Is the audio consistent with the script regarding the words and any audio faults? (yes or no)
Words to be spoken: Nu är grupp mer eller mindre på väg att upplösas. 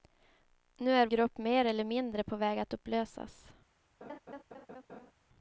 no